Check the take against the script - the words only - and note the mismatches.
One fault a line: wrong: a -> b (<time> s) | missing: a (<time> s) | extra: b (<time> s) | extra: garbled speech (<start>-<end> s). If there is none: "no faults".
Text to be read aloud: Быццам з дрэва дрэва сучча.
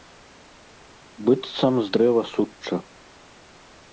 missing: дрэва (2.2 s)